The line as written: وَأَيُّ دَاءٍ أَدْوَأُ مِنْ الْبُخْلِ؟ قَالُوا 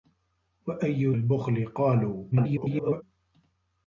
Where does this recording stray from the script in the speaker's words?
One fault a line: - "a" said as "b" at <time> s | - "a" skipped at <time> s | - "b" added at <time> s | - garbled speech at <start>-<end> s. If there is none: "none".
- "دَاءٍ أَدْوَأُ مِنْ" skipped at 1.1 s
- garbled speech at 2.3-3.0 s